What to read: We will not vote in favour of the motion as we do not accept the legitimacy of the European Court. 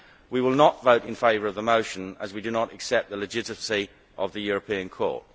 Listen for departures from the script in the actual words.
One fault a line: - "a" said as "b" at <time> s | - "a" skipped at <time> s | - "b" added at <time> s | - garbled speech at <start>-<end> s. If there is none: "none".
none